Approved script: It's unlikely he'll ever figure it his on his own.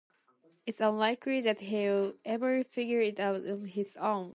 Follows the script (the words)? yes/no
no